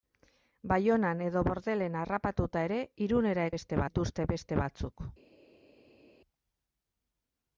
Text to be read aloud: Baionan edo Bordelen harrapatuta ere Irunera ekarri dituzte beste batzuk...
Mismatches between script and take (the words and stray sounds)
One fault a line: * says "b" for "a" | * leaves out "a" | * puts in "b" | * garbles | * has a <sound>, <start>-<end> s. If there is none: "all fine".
* says "beste" for "ekarri"